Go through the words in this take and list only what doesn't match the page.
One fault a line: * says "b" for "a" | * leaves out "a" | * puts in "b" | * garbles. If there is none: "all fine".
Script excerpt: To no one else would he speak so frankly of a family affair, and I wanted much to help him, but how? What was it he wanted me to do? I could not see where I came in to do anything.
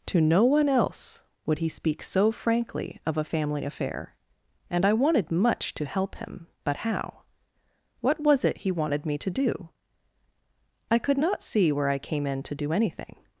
all fine